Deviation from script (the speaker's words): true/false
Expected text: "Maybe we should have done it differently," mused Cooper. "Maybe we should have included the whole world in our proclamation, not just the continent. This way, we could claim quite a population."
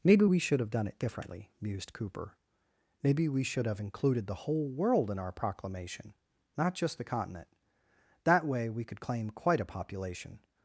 true